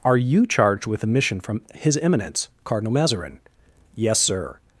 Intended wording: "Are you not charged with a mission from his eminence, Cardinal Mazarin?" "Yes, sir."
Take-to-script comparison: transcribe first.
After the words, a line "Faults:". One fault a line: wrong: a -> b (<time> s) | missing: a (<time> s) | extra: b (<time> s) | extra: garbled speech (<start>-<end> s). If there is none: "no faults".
"Are you charged with a mission from his eminence, Cardinal Mazarin?" "Yes, sir."
Faults:
missing: not (0.5 s)